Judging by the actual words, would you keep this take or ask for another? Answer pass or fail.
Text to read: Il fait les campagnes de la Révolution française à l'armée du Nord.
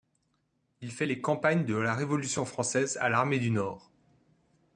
pass